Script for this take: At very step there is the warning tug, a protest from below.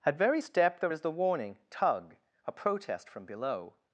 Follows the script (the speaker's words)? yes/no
yes